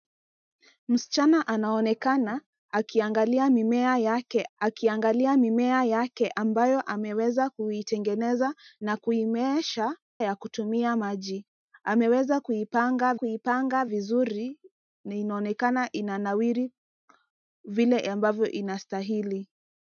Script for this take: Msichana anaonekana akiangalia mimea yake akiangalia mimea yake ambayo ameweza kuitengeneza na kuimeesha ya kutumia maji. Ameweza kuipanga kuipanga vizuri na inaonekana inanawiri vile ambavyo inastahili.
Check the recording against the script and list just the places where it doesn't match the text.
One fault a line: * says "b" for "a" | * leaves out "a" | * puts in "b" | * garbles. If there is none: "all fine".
all fine